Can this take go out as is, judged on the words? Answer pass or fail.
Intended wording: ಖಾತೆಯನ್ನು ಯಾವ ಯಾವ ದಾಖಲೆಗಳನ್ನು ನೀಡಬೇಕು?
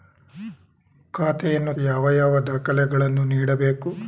pass